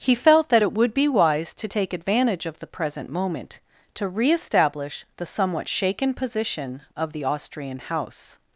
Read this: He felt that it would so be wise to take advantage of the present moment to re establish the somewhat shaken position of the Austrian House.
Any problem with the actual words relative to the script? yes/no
yes